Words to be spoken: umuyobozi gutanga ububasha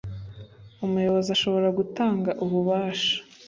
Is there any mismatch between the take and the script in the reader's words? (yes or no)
yes